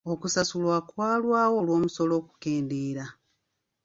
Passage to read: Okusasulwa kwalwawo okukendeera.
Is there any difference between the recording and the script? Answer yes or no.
yes